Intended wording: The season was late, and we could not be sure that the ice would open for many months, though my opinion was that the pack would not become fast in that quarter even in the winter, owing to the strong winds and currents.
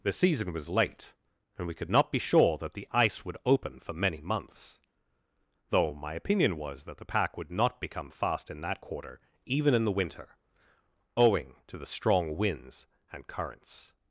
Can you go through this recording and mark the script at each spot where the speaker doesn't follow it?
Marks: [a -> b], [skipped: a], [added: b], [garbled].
The season was late, and we could not be sure that the ice would open for many months, though my opinion was that the pack would not become fast in that quarter even in the winter, owing to the strong winds and currents.